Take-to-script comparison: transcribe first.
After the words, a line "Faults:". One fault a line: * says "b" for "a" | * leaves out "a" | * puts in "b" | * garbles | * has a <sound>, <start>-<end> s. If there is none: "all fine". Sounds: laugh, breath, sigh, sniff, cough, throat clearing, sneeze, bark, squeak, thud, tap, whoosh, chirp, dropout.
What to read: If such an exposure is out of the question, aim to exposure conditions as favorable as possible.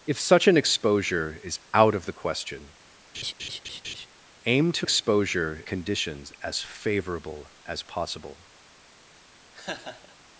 If such an exposure is out of the question, aim to exposure conditions as favorable as possible.
Faults:
* has a laugh, 3.1-4.1 s
* has a laugh, 9.5-10.2 s